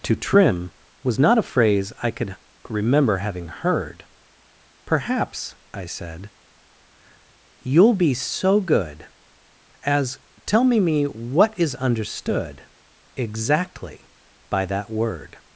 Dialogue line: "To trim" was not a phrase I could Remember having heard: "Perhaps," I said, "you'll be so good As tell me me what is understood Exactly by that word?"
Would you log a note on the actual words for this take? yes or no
no